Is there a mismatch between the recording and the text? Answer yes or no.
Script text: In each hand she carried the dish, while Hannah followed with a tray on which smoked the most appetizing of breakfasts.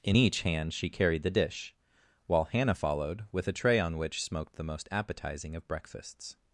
no